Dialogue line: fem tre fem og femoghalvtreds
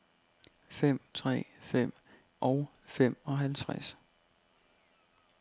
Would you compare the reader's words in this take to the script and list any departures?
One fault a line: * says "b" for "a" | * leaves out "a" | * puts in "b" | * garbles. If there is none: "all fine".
all fine